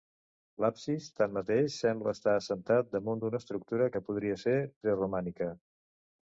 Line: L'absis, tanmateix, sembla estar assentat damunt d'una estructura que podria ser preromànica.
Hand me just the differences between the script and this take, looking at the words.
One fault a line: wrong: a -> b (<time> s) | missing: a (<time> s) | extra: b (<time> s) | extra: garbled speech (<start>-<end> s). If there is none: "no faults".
no faults